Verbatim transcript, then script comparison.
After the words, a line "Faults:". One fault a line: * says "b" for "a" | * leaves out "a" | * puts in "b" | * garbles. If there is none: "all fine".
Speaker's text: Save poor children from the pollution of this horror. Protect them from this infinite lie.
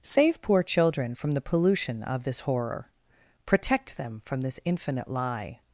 Save poor children from the pollution of this horror. Protect them from this infinite lie.
Faults:
all fine